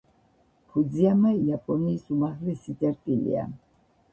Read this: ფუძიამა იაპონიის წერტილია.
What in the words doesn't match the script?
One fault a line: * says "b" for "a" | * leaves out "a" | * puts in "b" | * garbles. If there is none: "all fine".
* puts in "უმაღლესი"